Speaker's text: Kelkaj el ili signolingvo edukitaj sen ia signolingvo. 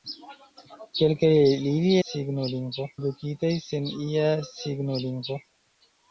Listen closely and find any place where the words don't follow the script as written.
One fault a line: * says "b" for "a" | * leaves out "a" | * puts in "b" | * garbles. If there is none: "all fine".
all fine